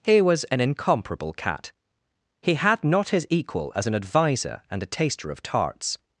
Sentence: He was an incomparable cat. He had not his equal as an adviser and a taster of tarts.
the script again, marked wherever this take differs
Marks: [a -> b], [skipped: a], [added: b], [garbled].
He was an incomparable cat. He had not his equal as an adviser and a taster of tarts.